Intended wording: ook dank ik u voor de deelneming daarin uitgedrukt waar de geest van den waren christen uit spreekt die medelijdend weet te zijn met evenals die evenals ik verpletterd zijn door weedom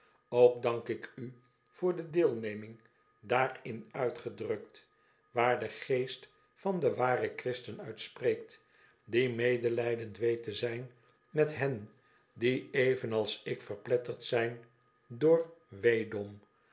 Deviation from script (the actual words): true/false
true